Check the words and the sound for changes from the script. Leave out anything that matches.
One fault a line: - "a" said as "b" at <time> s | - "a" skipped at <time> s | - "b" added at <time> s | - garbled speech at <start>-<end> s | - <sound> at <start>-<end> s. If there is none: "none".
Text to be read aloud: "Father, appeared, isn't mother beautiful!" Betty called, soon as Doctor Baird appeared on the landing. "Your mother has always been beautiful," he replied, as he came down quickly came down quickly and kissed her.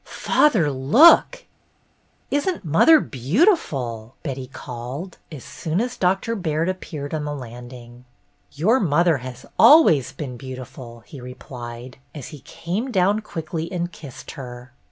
- "appeared" said as "look" at 0.7 s
- "as" added at 5.3 s
- "came down quickly" skipped at 13.7 s